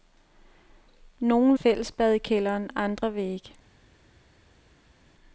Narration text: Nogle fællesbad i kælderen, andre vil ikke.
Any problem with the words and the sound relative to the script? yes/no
no